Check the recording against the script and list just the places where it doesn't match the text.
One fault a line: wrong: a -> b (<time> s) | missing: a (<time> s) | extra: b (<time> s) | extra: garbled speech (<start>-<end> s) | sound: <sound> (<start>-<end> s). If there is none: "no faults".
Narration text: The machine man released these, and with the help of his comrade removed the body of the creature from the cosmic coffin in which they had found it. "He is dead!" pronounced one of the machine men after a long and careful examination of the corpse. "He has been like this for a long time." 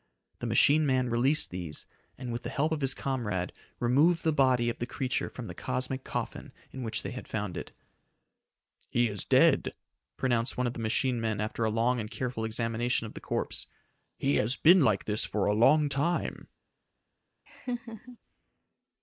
sound: laugh (17.5-18.2 s)